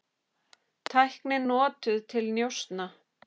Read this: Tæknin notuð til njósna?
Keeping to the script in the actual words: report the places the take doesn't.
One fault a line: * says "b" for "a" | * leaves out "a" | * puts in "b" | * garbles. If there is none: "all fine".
all fine